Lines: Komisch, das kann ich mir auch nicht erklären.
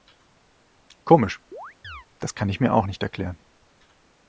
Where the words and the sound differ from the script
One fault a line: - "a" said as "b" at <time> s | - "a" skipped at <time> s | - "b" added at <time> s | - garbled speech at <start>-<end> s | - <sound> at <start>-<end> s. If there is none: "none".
- chirp at 1.5-2.1 s